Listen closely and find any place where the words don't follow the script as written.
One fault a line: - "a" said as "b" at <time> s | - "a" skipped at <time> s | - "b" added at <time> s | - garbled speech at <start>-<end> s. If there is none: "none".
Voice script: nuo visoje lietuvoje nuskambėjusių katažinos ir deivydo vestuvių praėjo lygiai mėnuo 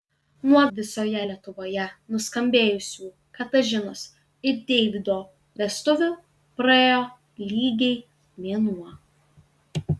none